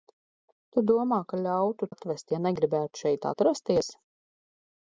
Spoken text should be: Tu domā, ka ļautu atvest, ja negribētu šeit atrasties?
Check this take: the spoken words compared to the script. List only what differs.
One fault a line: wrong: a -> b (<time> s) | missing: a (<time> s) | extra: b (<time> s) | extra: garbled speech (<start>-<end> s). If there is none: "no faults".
no faults